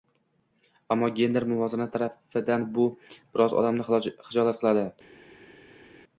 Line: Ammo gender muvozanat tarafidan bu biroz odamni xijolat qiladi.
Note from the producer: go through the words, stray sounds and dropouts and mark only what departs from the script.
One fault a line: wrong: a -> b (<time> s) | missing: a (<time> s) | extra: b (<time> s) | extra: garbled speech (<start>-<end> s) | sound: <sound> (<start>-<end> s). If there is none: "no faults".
no faults